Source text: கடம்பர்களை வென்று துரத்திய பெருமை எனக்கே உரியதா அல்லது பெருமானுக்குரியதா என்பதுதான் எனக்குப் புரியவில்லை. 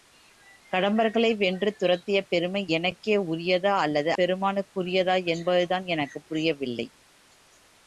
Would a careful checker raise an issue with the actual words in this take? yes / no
no